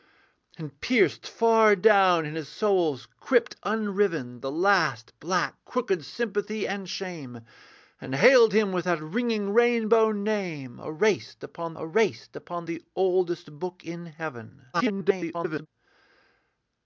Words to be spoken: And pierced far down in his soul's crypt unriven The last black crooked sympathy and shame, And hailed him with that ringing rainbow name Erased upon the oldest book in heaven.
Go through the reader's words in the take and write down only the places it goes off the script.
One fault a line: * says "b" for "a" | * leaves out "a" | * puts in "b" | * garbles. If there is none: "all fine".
* puts in "Erased upon"
* garbles